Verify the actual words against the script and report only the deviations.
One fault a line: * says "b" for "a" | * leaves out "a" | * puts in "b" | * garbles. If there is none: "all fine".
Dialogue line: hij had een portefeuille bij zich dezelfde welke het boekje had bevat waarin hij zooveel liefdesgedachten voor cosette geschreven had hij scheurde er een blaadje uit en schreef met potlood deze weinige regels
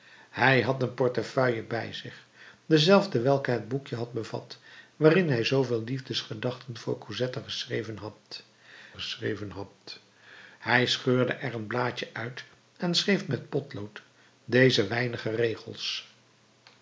* puts in "geschreven had"